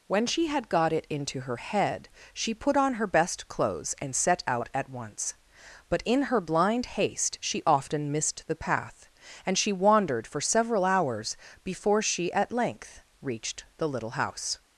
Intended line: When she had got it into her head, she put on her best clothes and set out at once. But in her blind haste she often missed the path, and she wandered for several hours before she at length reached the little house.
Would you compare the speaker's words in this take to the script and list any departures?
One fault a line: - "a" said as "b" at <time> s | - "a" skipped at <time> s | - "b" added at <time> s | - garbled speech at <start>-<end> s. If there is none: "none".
none